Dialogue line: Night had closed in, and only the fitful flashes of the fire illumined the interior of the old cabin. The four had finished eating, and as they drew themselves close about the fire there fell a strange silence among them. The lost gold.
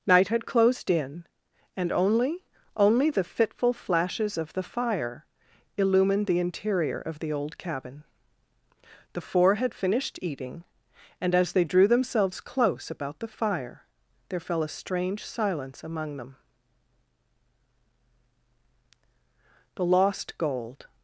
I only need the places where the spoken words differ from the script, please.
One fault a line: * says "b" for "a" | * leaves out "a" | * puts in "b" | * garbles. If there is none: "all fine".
* puts in "only"